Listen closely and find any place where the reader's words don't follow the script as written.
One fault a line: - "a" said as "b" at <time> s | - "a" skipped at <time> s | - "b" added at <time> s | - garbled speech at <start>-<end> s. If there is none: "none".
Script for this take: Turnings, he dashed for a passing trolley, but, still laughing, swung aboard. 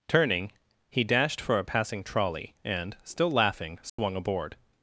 - "Turnings" said as "Turning" at 0.1 s
- "but" said as "and" at 2.6 s